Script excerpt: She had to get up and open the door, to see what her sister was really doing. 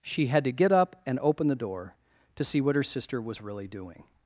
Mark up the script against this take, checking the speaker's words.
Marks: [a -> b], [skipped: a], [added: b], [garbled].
She had to get up and open the door, to see what her sister was really doing.